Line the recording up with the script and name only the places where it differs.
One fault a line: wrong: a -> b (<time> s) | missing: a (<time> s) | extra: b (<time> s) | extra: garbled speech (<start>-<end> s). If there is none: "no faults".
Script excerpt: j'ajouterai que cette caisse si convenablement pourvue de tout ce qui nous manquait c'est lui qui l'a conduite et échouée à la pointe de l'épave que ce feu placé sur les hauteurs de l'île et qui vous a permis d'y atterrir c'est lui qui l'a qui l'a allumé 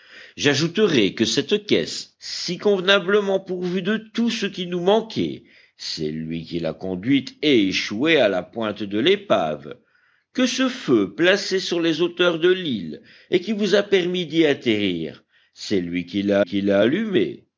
no faults